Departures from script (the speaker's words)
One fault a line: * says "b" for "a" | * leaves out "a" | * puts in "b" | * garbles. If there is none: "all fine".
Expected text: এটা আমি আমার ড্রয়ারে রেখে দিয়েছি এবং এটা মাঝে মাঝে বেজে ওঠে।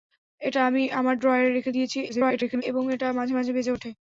* garbles